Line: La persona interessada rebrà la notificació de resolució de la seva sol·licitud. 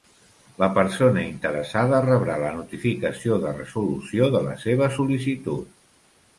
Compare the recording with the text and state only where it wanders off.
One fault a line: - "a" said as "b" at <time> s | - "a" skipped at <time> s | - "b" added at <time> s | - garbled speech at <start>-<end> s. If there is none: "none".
none